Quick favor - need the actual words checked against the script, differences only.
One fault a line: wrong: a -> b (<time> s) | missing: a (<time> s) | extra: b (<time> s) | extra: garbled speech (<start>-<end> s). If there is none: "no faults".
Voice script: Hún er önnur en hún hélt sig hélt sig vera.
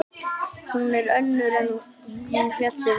missing: hélt sig (2.8 s)